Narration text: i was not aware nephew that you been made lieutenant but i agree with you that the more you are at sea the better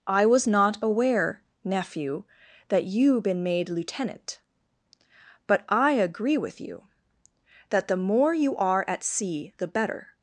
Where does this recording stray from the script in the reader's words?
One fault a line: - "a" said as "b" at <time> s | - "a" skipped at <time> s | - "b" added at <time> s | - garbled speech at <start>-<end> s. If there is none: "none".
none